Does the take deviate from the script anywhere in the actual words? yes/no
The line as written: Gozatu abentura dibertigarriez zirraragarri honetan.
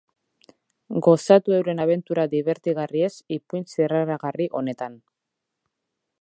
yes